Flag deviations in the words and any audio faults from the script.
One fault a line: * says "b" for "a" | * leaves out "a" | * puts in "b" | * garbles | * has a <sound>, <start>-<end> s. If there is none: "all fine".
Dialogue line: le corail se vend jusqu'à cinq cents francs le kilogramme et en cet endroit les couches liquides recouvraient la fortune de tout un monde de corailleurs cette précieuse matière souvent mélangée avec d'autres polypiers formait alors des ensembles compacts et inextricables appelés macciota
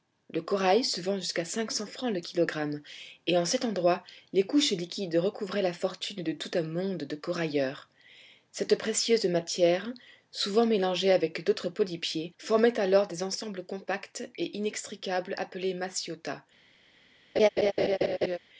* has a laugh, 17.4-18.4 s